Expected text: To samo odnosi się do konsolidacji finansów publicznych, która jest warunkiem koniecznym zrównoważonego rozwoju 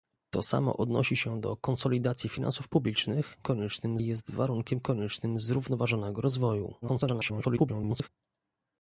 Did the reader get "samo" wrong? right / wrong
right